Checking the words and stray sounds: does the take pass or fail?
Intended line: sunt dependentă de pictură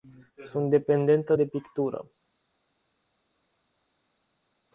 pass